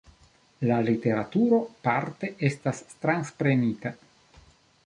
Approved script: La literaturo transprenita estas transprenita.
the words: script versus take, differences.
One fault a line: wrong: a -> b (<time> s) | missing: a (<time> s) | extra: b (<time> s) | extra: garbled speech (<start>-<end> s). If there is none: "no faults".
wrong: transprenita -> parte (1.9 s)